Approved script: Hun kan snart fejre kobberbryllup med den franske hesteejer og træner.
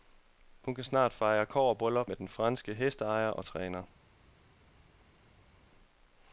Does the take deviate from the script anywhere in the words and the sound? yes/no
no